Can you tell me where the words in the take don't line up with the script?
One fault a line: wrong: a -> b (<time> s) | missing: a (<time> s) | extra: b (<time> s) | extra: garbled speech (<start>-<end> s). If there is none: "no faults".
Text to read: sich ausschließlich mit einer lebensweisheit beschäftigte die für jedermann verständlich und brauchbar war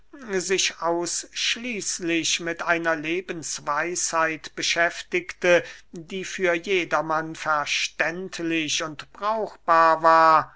no faults